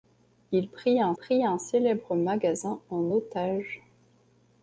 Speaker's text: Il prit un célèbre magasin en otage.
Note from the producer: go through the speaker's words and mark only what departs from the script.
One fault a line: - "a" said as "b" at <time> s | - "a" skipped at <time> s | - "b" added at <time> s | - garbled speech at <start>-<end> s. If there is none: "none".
- "prit un" added at 1.1 s